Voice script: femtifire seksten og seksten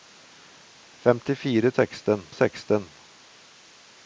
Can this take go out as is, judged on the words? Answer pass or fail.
pass